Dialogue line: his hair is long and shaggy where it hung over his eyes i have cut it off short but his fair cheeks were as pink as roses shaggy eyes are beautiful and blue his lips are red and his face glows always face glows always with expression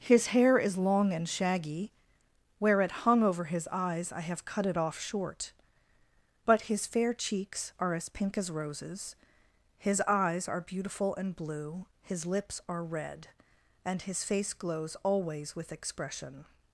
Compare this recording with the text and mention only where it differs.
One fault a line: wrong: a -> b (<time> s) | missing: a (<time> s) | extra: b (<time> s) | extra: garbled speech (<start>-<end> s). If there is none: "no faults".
wrong: were -> are (7.8 s)
wrong: shaggy -> his (9.8 s)
missing: face glows always (15.5 s)